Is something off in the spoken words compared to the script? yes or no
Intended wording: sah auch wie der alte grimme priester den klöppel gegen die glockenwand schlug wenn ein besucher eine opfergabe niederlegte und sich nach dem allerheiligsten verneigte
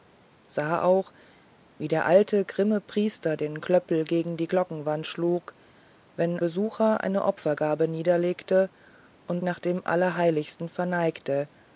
yes